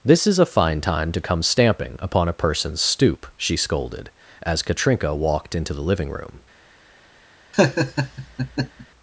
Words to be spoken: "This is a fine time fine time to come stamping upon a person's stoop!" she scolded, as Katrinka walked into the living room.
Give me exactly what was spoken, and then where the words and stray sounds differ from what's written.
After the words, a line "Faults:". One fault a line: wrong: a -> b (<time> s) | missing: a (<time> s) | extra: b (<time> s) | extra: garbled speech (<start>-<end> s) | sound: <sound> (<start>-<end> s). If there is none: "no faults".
"This is a fine time to come stamping upon a person's stoop!" she scolded, as Katrinka walked into the living room.
Faults:
missing: fine time (1.1 s)
sound: laugh (7.5-8.9 s)